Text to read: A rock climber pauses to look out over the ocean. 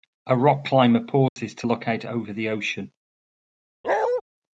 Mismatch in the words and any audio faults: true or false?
true